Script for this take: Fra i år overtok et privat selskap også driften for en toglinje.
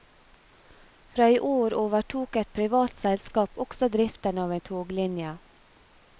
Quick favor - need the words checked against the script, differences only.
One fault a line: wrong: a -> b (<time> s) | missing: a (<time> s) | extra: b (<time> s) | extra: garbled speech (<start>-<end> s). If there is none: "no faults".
wrong: for -> av (4.5 s)